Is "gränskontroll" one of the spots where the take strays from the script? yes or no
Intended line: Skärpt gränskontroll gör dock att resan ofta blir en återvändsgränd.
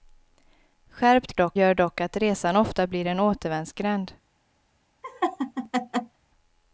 yes